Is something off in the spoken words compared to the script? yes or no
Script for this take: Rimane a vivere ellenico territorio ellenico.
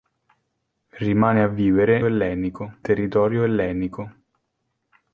no